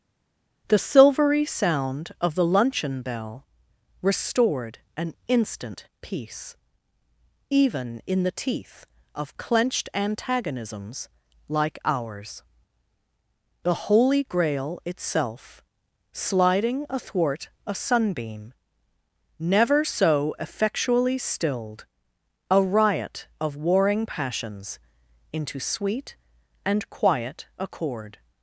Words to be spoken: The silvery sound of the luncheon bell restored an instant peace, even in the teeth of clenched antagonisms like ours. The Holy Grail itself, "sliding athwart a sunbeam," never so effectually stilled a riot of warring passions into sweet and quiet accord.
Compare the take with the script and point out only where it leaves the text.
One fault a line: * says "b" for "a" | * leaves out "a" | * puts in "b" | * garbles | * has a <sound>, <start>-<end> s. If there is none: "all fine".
all fine